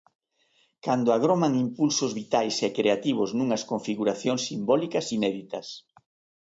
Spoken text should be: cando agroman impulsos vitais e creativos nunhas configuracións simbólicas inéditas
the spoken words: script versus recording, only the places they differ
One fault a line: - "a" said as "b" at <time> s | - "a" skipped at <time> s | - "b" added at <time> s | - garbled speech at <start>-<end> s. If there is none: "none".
none